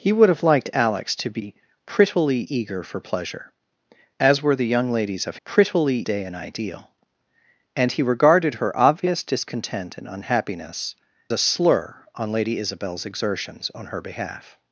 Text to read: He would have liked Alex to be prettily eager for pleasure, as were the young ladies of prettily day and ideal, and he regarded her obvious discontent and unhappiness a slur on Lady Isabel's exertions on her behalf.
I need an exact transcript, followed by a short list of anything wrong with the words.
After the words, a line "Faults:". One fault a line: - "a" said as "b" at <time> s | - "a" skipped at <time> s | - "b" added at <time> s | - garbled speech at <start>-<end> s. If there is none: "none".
He would have liked Alex to be prettily eager for pleasure, as were the young ladies of prettily day and ideal, and he regarded her obvious discontent and unhappiness a slur on Lady Isabel's exertions on her behalf.
Faults:
none